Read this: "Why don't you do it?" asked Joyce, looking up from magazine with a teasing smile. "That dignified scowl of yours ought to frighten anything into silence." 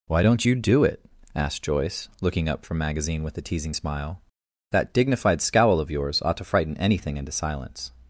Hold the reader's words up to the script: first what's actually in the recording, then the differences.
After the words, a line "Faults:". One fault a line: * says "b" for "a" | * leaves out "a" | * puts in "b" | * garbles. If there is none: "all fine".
"Why don't you do it?" asked Joyce, looking up from magazine with a teasing smile. "That dignified scowl of yours ought to frighten anything into silence."
Faults:
all fine